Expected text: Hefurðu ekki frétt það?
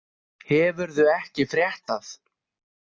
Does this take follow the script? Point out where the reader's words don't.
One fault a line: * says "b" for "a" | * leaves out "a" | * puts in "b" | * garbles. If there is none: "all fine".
all fine